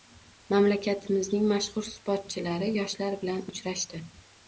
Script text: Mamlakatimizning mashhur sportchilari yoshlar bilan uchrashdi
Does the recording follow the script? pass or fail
pass